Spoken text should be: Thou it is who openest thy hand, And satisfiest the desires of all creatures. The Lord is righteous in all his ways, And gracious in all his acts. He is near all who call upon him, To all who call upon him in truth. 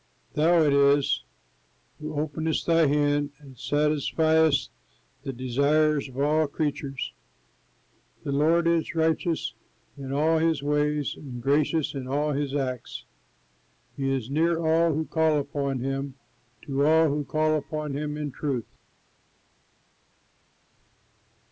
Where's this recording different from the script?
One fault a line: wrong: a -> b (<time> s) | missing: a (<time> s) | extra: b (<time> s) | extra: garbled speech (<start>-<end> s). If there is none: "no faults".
no faults